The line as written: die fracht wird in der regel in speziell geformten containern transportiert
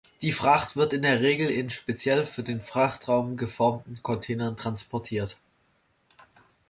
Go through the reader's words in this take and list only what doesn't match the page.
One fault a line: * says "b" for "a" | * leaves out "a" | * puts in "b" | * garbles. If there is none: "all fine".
* puts in "für den frachtraum"